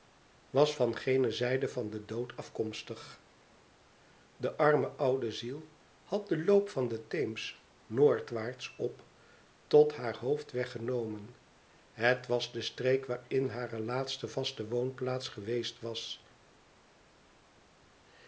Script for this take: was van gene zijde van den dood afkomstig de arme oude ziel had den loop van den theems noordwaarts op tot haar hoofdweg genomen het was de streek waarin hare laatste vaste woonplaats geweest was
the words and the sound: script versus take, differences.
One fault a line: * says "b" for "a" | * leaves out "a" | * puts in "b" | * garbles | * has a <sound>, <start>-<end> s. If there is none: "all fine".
all fine